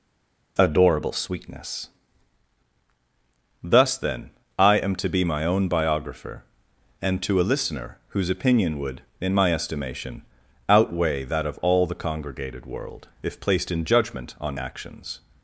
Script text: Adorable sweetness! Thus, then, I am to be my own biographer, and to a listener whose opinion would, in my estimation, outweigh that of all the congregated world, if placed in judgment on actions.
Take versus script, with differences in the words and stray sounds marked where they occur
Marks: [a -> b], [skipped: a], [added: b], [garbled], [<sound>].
Adorable sweetness! Thus, then, I am to be my own biographer, and to a listener whose opinion would, in my estimation, outweigh that of all the congregated world, if placed in judgment on actions.